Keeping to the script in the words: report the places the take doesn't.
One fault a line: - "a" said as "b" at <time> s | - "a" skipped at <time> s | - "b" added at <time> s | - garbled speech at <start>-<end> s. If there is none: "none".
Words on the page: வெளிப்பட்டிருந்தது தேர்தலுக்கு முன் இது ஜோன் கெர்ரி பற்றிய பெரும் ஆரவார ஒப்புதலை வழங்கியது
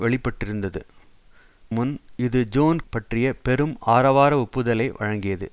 - "தேர்தலுக்கு" skipped at 0.8 s
- "கெர்ரி" skipped at 2.8 s